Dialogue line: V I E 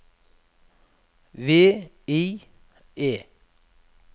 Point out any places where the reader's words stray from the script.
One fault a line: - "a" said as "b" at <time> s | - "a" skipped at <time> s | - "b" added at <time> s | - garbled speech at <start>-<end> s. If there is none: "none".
none